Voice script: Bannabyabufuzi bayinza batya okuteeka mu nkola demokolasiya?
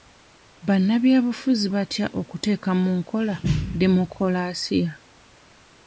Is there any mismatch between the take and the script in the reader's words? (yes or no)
yes